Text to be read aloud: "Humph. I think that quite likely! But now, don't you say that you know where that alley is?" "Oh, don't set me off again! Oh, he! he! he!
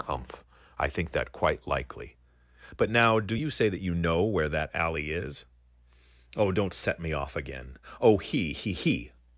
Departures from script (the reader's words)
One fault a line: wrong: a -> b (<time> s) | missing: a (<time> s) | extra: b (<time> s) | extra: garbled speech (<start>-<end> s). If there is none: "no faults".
wrong: don't -> do (3.2 s)